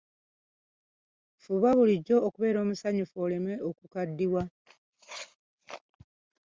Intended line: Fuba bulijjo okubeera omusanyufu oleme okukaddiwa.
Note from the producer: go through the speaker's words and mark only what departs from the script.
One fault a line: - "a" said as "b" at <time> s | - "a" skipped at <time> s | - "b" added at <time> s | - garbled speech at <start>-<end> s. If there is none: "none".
none